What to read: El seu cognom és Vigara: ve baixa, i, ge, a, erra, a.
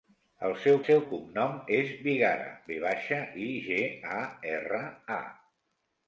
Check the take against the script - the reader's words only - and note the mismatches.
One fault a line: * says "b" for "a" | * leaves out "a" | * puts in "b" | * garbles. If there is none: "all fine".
* puts in "seu"